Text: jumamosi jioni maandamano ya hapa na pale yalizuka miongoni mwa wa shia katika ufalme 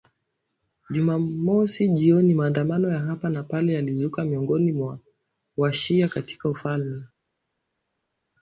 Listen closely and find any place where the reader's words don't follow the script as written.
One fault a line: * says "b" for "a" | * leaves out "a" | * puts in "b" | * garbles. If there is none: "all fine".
all fine